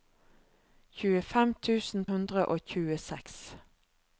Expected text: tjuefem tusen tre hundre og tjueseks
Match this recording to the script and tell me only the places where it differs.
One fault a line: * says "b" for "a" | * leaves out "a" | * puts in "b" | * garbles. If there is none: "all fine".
* leaves out "tre"